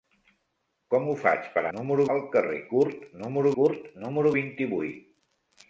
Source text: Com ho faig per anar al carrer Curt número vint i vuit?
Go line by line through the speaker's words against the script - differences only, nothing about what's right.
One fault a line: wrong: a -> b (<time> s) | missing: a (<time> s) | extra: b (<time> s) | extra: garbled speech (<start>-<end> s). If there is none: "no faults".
wrong: anar -> número (1.8 s)
extra: Curt número (3.6 s)